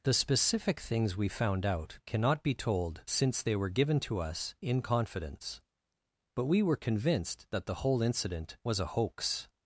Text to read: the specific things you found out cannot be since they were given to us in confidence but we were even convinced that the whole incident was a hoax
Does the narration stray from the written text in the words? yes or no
yes